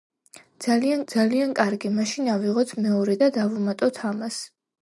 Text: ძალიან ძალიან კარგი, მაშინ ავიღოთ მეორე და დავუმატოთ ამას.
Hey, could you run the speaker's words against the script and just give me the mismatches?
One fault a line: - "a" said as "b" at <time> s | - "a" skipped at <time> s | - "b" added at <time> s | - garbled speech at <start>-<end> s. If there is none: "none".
none